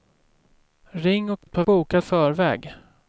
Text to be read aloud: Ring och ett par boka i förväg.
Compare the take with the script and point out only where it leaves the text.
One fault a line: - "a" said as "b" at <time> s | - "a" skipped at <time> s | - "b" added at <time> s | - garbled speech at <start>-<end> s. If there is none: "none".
none